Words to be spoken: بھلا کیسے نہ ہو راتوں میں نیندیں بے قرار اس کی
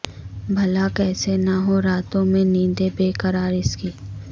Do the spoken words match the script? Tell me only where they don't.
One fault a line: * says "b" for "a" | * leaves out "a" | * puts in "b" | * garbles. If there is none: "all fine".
all fine